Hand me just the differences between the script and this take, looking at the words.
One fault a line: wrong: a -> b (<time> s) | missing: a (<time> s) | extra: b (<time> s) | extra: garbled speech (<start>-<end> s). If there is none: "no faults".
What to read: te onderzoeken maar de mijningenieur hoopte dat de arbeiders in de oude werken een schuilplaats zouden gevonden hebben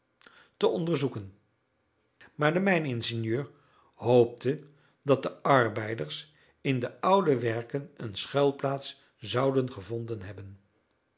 no faults